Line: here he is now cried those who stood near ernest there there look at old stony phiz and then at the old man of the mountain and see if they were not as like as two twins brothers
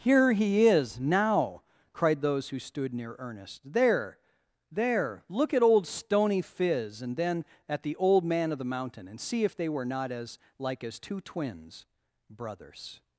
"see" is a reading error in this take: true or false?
false